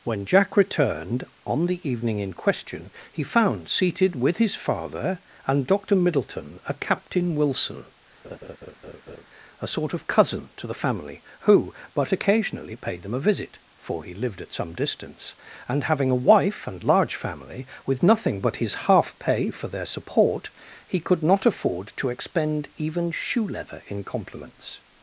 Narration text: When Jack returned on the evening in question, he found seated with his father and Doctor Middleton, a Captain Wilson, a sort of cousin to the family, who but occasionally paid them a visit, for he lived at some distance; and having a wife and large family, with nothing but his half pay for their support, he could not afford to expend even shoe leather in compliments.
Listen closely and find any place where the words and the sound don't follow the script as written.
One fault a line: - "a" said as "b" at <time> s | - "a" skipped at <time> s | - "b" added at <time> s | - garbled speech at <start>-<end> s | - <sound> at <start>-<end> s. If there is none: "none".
- laugh at 8.2-9.3 s